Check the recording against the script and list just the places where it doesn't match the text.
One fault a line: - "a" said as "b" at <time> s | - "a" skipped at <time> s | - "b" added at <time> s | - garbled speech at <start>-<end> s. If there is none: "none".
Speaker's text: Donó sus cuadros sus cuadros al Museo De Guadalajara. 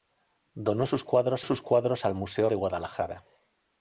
none